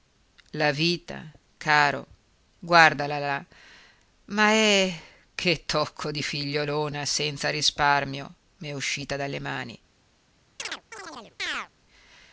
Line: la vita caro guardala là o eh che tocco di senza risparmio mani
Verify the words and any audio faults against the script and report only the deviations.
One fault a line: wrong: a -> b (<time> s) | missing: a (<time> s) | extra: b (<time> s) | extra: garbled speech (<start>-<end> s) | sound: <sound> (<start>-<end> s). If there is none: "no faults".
wrong: o -> ma (4.3 s)
extra: figliolona (6.2 s)
extra: m'è uscita dalle (8.6 s)
sound: chirp (10.6-11.7 s)